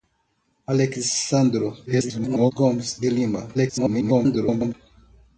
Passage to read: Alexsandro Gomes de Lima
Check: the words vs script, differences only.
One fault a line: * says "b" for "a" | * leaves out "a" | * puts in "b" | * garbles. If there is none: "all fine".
* garbles
* garbles